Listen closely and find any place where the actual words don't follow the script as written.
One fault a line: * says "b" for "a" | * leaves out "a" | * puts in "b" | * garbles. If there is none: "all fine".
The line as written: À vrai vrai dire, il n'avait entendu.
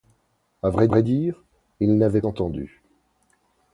all fine